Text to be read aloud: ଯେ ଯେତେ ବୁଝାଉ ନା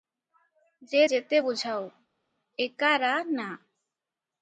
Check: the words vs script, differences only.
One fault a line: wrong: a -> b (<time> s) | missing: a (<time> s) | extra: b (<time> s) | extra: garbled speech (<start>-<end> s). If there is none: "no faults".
extra: ଏକା ରା (2.6 s)